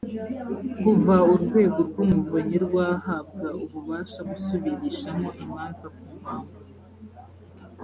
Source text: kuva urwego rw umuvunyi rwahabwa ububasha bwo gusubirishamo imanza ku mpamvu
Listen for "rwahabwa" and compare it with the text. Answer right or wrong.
right